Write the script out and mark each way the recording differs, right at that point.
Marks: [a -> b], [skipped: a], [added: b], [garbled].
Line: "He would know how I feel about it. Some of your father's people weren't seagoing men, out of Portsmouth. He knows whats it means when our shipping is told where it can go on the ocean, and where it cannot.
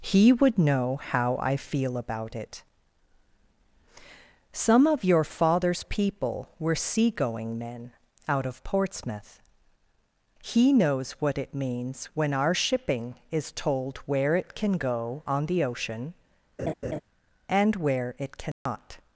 "He would know how I feel about it. Some of your father's people [weren't -> were] seagoing men, out of Portsmouth. He knows [whats -> what] it means when our shipping is told where it can go on the ocean, and where it cannot.